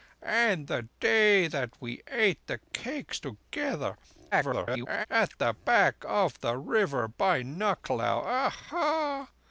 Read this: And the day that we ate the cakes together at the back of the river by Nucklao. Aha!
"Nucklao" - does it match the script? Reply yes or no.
yes